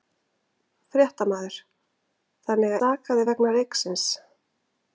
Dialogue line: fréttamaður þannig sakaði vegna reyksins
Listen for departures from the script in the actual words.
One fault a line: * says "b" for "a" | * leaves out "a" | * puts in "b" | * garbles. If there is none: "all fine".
all fine